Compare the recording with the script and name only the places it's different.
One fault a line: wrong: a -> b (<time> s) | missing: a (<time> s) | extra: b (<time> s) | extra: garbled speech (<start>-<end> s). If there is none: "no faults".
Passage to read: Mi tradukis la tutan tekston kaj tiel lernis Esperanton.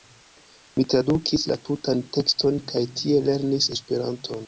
no faults